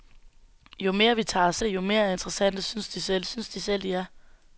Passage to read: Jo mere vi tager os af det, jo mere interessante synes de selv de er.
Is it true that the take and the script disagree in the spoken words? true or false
true